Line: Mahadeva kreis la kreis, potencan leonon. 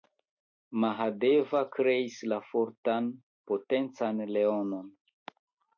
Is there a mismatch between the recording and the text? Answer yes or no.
yes